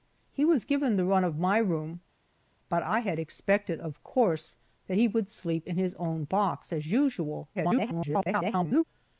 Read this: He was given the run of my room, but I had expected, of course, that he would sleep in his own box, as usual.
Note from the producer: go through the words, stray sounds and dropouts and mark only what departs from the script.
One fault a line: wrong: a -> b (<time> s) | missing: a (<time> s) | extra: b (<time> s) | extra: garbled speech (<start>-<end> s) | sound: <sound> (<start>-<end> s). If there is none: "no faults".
extra: garbled speech (7.5-8.8 s)